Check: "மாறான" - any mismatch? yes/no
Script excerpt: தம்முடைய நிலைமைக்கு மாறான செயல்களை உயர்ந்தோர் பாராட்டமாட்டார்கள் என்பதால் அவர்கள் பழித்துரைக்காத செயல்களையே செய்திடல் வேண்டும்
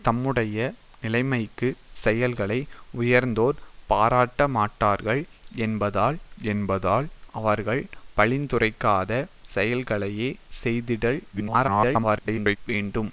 yes